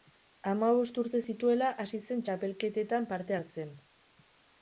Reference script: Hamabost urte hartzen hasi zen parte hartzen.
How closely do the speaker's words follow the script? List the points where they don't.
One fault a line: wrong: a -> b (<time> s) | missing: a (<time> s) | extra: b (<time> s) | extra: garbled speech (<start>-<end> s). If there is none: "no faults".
wrong: hartzen -> zituela (1.3 s)
extra: txapelketetan (2.3 s)